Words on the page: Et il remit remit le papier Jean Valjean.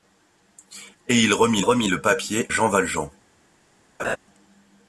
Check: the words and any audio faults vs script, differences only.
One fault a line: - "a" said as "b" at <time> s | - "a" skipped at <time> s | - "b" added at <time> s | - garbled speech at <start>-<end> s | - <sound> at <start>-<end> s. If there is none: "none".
- laugh at 4.0-4.2 s